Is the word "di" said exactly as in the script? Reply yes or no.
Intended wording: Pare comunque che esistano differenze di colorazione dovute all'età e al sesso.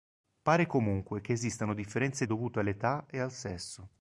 no